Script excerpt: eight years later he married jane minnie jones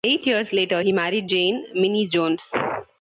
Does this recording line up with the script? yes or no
yes